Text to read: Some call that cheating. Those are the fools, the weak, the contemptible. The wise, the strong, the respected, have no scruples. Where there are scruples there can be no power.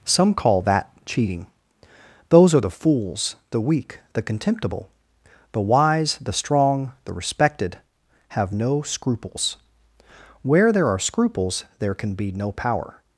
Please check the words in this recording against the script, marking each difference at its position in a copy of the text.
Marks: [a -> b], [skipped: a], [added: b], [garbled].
Some call that cheating. Those are the fools, the weak, the contemptible. The wise, the strong, the respected, have no scruples. Where there are scruples there can be no power.